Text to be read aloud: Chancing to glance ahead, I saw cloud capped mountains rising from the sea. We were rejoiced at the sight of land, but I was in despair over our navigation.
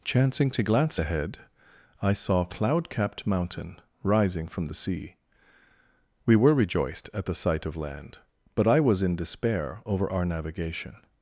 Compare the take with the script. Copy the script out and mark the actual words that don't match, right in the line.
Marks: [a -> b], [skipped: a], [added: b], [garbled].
Chancing to glance ahead, I saw cloud capped [mountains -> mountain] rising from the sea. We were rejoiced at the sight of land, but I was in despair over our navigation.